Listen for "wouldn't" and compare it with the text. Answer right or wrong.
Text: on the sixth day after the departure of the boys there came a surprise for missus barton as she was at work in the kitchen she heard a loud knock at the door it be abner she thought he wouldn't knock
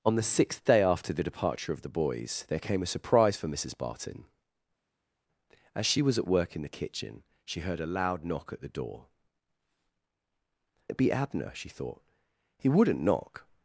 right